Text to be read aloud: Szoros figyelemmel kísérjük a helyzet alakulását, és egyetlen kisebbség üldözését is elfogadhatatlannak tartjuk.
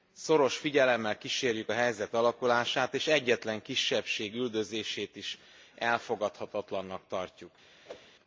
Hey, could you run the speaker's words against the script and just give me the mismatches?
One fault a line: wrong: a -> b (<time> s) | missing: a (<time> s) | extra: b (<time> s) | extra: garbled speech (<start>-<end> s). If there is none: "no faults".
no faults